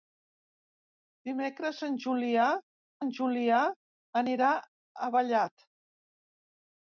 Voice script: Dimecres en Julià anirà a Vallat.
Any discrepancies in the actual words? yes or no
yes